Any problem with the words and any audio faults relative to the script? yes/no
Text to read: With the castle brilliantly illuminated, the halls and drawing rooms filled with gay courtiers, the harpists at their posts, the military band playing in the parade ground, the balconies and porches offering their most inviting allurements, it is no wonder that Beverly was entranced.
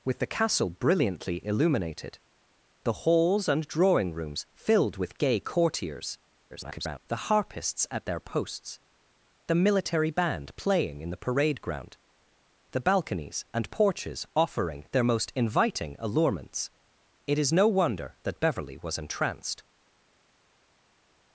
yes